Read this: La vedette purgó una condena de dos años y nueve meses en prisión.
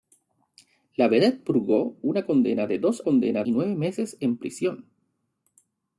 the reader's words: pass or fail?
fail